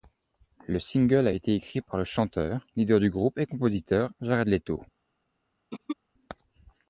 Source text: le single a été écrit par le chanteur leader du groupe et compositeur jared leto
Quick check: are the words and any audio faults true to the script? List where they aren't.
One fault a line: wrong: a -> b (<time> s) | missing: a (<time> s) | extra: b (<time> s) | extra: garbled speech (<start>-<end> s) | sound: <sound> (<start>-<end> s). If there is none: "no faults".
sound: throat clearing (5.7-6.0 s)